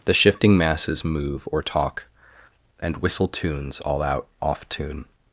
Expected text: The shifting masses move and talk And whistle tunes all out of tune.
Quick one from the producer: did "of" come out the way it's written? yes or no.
no